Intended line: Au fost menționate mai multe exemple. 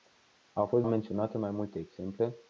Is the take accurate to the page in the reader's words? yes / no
yes